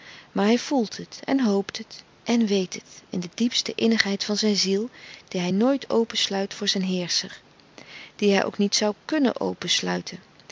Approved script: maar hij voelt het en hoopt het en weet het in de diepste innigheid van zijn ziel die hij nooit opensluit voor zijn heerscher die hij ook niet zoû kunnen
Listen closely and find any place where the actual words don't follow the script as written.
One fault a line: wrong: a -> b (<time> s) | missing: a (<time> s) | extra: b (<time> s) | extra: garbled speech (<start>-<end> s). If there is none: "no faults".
no faults